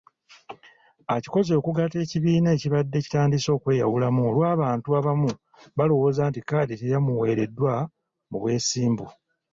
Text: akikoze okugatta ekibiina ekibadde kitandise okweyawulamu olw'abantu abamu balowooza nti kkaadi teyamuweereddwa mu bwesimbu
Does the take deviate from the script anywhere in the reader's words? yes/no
no